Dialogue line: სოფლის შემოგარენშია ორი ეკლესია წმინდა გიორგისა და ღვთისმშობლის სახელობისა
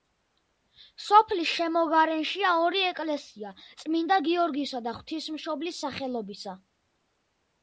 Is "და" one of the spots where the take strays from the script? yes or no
no